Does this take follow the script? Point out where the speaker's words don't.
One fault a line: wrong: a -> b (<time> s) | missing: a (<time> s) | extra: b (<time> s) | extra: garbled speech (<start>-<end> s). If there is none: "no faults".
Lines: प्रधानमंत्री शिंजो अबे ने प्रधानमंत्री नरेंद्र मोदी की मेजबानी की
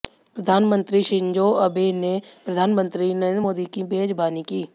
no faults